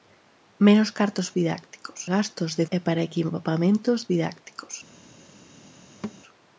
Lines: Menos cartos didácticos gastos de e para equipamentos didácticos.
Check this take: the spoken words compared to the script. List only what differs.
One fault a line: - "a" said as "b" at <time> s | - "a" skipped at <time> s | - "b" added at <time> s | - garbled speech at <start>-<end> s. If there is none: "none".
none